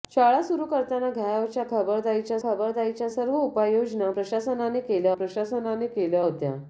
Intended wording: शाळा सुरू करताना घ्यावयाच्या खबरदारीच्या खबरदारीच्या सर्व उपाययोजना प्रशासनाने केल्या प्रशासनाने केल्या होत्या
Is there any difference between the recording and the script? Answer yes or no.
no